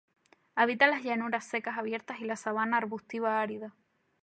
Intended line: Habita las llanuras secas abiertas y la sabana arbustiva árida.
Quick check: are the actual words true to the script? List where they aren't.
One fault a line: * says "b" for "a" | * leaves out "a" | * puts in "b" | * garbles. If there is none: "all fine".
all fine